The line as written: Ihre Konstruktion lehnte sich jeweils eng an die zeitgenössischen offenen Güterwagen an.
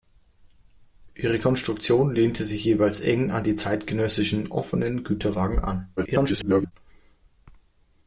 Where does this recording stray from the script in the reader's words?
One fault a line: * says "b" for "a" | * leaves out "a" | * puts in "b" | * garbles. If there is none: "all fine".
* garbles